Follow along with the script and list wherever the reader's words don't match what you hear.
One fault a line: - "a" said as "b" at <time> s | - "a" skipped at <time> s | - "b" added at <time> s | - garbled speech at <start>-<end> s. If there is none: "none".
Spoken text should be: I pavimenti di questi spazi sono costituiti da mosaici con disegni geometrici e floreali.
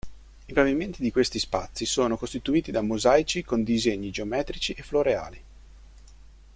none